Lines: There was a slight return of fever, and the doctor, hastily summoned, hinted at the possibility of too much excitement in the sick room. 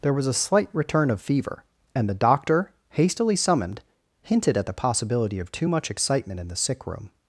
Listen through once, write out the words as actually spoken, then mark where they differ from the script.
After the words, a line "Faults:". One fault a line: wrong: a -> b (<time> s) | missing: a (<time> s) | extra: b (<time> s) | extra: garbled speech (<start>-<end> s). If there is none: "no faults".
There was a slight return of fever, and the doctor, hastily summoned, hinted at the possibility of too much excitement in the sick room.
Faults:
no faults